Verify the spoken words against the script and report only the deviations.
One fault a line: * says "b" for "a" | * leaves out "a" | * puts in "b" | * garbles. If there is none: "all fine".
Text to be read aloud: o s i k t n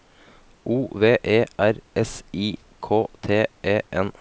* puts in "v e r"
* puts in "e"